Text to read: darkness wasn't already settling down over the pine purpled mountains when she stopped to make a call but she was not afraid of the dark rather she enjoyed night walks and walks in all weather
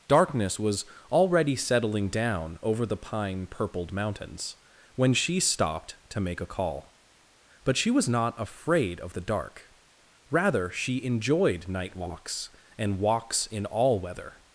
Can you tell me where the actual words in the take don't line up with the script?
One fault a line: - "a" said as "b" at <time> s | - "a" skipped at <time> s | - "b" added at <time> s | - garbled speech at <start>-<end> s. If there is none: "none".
- "wasn't" said as "was" at 0.6 s